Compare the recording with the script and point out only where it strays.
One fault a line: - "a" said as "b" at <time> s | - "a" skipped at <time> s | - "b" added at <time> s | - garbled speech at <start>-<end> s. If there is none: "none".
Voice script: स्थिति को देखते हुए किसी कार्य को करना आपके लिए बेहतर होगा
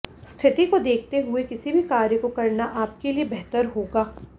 - "भी" added at 1.7 s